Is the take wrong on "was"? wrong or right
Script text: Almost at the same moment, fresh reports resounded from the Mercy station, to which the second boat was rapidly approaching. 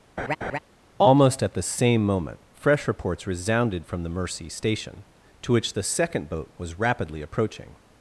right